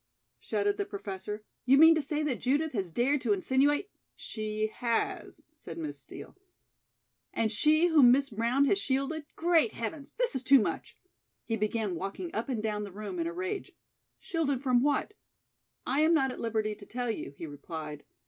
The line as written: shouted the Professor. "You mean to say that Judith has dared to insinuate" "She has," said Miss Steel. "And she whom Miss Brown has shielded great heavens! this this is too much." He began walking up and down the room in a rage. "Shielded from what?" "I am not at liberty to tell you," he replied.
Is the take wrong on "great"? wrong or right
right